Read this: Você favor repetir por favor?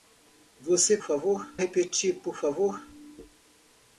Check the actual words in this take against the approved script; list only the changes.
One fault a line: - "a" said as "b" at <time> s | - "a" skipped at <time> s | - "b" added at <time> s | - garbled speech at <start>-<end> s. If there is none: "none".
none